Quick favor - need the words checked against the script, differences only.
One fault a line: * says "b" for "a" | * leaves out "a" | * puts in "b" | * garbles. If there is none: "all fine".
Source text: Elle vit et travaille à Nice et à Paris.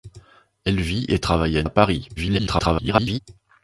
* leaves out "Nice et"
* garbles